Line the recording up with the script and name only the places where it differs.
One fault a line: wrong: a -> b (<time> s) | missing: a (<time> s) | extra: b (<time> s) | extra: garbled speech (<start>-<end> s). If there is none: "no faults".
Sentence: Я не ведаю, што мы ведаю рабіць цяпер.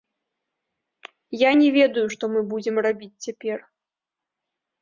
wrong: ведаю -> будзем (2.5 s)